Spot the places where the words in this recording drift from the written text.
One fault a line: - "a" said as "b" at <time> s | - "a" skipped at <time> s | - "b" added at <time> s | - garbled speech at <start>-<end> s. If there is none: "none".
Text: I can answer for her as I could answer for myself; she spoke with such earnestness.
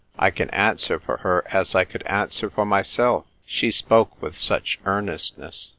none